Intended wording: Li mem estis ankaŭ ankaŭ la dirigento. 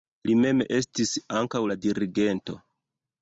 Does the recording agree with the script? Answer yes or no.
no